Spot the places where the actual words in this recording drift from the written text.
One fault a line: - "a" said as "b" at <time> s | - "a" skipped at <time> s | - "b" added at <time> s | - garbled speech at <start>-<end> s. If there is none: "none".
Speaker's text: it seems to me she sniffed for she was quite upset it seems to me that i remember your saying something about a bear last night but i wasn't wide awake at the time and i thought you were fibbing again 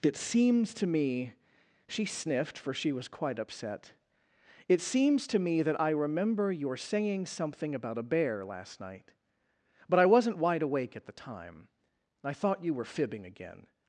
- "and" skipped at 11.7 s